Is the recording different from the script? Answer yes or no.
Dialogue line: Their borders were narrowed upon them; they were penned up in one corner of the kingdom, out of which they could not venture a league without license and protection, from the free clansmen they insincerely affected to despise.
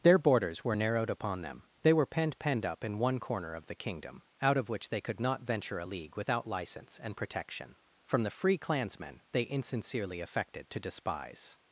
yes